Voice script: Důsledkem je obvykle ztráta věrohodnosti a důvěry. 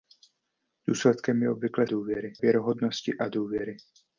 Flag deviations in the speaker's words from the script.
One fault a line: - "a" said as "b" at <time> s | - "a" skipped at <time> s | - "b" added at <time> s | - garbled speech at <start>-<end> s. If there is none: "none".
- "ztráta" said as "důvěry" at 1.8 s